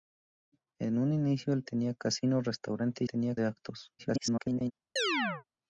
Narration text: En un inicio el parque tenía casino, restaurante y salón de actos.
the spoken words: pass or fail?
fail